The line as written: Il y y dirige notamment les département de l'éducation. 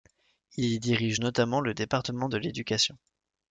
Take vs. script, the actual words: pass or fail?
fail